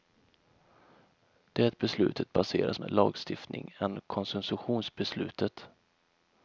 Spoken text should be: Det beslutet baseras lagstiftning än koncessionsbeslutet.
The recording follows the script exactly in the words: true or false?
true